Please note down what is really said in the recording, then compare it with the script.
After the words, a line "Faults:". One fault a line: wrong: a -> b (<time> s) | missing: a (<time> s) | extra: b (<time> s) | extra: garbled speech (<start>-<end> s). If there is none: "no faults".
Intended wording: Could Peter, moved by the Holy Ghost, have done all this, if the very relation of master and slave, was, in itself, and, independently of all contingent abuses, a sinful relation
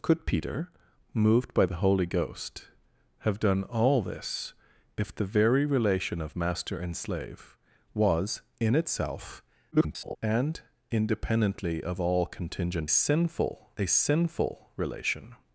Could Peter, moved by the Holy Ghost, have done all this, if the very relation of master and slave, was, in itself, [garbled] and, independently of all contingent sinful, a sinful relation
Faults:
extra: garbled speech (9.7-10.2 s)
wrong: abuses -> sinful (12.9 s)